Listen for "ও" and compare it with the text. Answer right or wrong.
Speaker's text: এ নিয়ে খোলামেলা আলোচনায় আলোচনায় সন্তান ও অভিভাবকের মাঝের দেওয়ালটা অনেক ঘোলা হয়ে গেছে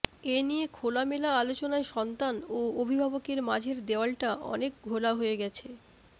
right